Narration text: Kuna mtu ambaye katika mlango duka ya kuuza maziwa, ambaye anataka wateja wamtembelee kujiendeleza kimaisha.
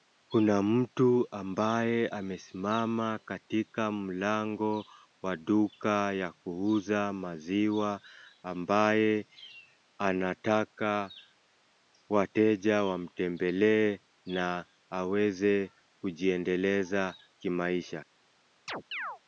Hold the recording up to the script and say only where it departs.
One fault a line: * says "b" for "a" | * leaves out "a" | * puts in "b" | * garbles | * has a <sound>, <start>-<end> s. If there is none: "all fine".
* puts in "amesimama"
* puts in "wa"
* puts in "na aweze"
* has a chirp, 18.7-19.2 s